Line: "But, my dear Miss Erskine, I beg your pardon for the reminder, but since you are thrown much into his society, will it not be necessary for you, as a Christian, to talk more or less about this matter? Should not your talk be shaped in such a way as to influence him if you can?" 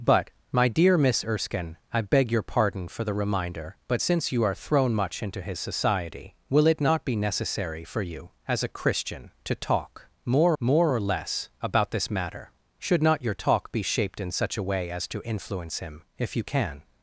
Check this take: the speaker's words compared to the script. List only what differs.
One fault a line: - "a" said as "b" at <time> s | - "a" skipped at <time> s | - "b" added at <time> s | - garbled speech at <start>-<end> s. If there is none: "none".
- "more" added at 10.6 s